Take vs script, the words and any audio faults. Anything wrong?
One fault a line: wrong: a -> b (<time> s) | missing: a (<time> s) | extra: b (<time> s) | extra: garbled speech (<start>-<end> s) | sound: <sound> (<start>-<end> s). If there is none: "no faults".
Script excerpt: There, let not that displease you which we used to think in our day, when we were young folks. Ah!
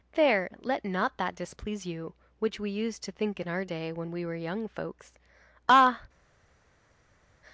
no faults